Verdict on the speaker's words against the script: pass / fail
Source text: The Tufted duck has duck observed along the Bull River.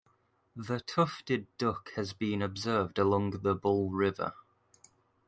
fail